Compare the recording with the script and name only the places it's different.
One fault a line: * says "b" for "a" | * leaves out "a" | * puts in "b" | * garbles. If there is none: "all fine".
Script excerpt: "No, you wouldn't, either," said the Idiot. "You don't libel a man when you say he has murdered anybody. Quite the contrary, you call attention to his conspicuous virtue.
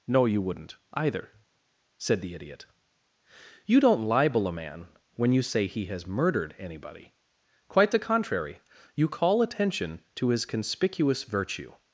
all fine